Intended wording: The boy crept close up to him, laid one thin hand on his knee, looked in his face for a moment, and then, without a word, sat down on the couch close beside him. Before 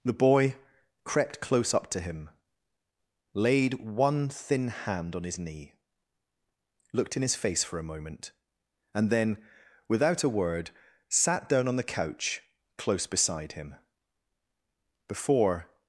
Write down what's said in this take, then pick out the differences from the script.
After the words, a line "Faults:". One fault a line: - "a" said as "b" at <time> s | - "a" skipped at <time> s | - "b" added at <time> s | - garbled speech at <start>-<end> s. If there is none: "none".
The boy crept close up to him, laid one thin hand on his knee, looked in his face for a moment, and then, without a word, sat down on the couch close beside him. Before
Faults:
none